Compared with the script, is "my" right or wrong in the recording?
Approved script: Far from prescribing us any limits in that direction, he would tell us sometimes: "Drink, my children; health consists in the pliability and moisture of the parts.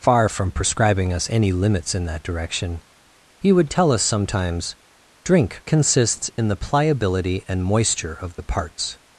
wrong